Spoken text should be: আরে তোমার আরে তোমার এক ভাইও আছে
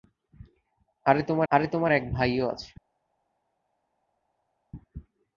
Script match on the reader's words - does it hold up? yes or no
yes